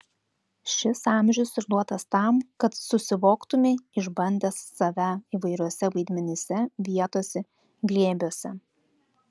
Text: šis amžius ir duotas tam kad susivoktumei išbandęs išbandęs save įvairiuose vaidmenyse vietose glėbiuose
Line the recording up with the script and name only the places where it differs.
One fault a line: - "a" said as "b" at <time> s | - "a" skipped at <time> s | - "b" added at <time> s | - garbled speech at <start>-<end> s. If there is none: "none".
- "išbandęs" skipped at 4.6 s